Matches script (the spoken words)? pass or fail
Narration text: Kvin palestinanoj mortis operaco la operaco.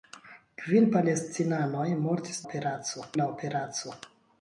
pass